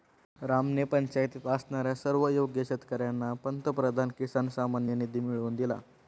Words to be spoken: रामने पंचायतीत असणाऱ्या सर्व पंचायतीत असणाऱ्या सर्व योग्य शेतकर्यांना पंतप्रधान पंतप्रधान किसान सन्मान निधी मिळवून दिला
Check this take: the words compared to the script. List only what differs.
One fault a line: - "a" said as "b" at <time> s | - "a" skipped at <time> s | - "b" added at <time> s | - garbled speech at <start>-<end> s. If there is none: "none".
- "पंचायतीत असणाऱ्या सर्व" skipped at 2.3 s
- "पंतप्रधान" skipped at 4.1 s